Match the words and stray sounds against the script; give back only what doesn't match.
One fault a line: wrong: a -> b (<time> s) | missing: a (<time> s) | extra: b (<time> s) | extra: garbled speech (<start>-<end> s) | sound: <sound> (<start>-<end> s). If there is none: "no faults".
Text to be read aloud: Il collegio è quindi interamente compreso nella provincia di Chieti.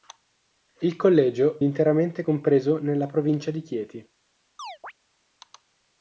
missing: è quindi (1.6 s)
sound: chirp (4.6-4.9 s)